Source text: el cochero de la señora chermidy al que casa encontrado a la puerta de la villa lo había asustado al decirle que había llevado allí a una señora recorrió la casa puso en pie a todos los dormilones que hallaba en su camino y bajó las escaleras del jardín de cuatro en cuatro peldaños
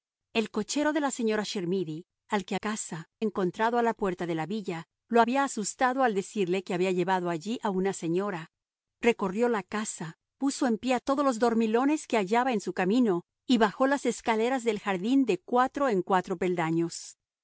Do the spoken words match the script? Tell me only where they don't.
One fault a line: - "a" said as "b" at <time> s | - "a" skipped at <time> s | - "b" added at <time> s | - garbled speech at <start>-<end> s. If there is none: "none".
none